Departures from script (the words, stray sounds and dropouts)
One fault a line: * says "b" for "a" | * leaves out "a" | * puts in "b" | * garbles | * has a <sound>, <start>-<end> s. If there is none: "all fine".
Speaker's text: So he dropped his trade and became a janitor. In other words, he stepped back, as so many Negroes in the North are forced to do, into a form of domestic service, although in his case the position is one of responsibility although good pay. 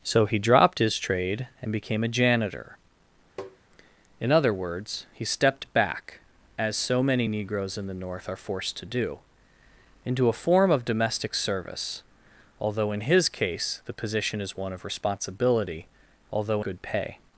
* has a tap, 3.4-3.6 s